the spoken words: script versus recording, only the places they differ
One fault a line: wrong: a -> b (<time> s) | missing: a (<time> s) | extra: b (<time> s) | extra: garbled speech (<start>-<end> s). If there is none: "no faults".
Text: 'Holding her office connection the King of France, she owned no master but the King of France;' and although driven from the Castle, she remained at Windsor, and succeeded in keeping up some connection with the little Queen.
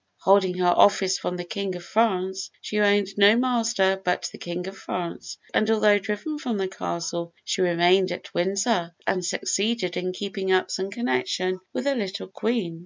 wrong: connection -> from (1.2 s)